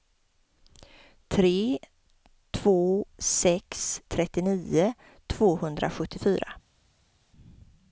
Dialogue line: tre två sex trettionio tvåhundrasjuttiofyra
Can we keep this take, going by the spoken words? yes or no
yes